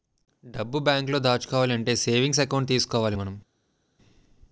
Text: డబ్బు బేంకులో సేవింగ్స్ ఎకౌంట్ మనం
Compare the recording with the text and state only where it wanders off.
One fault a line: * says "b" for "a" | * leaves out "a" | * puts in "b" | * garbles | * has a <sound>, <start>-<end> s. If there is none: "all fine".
* puts in "దాచుకోవాలంటే"
* puts in "తీసుకోవాలి"